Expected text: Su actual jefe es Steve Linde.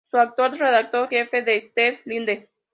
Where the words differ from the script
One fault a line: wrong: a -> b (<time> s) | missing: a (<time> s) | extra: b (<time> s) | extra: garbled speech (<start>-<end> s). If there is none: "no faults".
extra: redactor (0.6 s)